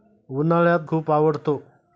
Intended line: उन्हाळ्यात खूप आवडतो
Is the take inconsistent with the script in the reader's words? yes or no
no